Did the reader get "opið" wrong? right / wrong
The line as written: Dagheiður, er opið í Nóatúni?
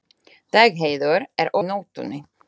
wrong